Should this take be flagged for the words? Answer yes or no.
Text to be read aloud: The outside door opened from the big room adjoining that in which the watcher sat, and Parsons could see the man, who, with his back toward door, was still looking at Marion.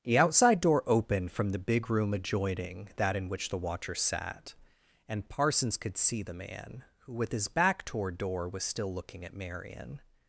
no